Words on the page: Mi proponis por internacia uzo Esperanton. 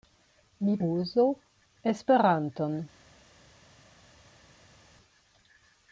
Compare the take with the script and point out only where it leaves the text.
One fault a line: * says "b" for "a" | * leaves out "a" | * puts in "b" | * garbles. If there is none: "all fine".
* leaves out "proponis por internacia"